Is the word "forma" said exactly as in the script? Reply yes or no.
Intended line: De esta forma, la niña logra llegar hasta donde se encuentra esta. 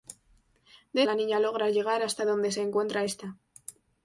no